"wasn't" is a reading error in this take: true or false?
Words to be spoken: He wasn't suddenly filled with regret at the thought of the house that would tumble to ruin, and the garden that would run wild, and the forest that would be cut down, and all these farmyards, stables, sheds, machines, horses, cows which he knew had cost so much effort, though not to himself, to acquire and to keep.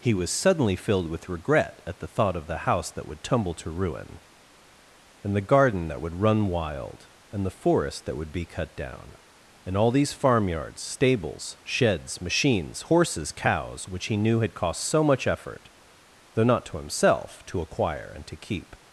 true